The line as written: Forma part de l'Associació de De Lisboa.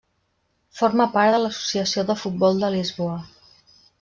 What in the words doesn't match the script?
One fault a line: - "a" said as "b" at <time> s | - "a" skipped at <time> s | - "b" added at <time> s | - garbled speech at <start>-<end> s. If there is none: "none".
- "Futbol" added at 2.2 s